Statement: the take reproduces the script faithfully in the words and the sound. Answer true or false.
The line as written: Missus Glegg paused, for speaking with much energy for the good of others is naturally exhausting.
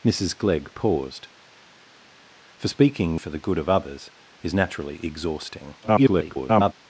false